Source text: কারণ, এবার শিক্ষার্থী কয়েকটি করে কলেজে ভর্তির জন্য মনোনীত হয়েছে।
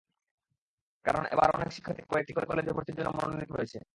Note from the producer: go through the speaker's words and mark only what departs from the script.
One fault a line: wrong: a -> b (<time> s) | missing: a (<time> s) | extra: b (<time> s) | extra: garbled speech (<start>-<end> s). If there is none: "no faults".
extra: অনেক (1.6 s)